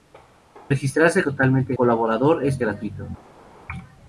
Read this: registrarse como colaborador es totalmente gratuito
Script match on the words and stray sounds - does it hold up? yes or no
no